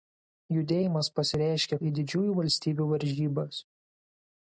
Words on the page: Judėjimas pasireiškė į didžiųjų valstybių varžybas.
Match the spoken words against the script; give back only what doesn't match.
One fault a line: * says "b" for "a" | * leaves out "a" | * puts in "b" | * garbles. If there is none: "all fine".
all fine